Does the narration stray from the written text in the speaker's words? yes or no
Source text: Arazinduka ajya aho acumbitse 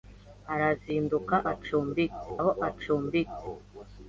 yes